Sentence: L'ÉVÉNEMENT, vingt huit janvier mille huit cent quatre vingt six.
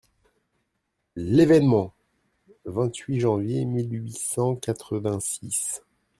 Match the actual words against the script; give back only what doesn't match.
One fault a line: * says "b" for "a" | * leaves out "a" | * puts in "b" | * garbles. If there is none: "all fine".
all fine